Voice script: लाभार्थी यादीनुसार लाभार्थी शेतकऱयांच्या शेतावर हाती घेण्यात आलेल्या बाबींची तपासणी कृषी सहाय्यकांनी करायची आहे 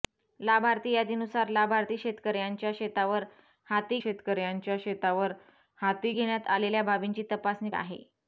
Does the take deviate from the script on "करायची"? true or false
true